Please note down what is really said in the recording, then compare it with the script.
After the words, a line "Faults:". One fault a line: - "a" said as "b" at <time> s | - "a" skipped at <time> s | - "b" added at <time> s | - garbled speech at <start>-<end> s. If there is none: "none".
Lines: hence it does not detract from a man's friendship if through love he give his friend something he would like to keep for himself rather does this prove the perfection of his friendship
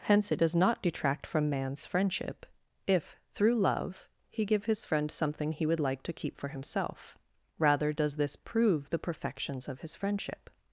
hence it does not detract from man's friendship if through love he give his friend something he would like to keep for himself rather does this prove the perfections of his friendship
Faults:
- "a" skipped at 1.5 s
- "perfection" said as "perfections" at 9.0 s